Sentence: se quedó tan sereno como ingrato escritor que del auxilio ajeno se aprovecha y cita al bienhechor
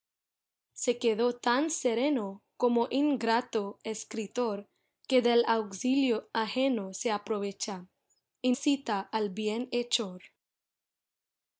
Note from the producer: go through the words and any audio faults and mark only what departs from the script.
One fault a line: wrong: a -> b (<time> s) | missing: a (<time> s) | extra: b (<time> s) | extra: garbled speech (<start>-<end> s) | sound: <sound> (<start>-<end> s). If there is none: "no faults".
no faults